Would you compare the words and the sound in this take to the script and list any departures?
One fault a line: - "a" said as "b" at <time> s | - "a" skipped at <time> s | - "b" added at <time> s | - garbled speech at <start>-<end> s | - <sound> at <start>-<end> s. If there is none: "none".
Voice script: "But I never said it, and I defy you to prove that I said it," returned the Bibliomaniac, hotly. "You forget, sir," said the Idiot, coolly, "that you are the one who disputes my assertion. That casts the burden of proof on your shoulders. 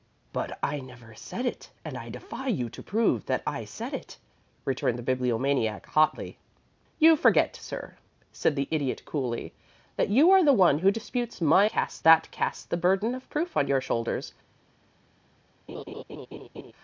- "assertion" said as "casts" at 11.7 s
- laugh at 15.7-16.7 s